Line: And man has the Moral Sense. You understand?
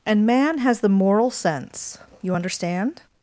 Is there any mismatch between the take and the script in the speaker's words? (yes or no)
no